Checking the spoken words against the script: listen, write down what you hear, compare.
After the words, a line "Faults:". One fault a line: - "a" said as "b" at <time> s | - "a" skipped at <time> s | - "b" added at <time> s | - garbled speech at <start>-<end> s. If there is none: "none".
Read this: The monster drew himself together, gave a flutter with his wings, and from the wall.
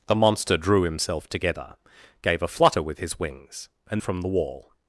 The monster drew himself together, gave a flutter with his wings, and from the wall.
Faults:
none